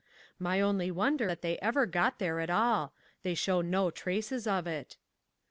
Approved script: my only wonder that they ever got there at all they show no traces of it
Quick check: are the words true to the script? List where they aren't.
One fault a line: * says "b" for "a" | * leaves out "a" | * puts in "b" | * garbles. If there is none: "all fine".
all fine